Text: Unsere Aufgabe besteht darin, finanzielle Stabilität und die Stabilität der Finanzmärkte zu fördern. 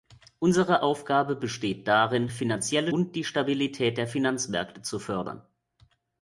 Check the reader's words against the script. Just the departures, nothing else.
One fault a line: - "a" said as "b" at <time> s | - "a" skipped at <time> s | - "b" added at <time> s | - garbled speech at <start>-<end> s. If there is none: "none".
- "Stabilität" skipped at 2.9 s